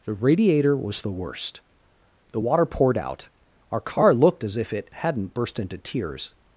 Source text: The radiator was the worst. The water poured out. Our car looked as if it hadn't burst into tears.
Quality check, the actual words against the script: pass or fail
pass